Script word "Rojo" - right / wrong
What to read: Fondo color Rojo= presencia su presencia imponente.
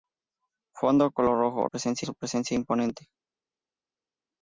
right